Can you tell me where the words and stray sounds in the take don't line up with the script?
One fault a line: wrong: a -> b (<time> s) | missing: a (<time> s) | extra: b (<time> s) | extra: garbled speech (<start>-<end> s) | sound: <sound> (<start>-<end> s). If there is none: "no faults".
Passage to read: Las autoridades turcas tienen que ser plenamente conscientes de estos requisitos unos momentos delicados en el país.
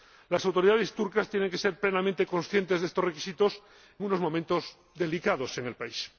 no faults